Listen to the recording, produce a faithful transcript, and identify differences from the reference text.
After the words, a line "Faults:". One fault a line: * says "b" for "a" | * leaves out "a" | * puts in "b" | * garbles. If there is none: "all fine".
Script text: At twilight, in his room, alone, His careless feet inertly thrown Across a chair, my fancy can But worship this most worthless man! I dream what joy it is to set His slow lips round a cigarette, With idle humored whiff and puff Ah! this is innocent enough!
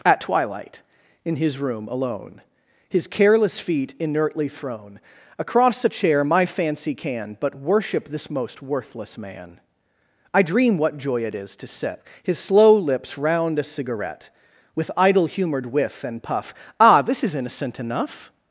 At twilight, in his room, alone, His careless feet inertly thrown Across a chair, my fancy can But worship this most worthless man! I dream what joy it is to set His slow lips round a cigarette, With idle humored whiff and puff Ah! this is innocent enough!
Faults:
all fine